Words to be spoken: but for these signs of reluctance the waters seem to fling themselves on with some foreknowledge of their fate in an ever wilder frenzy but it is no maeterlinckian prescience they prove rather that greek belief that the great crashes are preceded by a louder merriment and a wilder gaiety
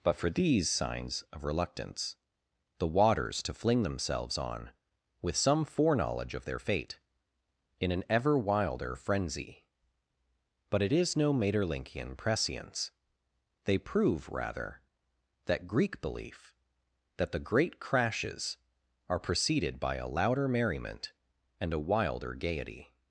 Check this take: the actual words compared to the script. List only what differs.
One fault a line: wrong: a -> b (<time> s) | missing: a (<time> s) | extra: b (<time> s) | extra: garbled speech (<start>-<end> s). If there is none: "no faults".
missing: seem (3.4 s)